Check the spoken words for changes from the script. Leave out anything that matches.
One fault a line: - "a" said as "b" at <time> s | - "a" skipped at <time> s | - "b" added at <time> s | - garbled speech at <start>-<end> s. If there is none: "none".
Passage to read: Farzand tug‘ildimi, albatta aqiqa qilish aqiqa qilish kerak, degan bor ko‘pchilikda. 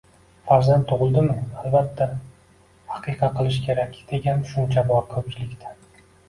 - "aqiqa qilish" skipped at 3.6 s
- "tushuncha" added at 4.5 s